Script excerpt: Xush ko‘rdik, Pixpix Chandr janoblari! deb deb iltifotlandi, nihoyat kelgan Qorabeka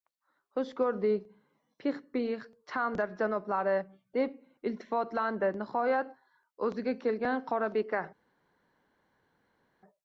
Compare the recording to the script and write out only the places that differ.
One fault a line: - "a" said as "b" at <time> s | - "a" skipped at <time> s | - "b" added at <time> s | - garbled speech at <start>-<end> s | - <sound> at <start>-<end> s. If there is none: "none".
- "deb" skipped at 4.4 s
- "o‘ziga" added at 6.7 s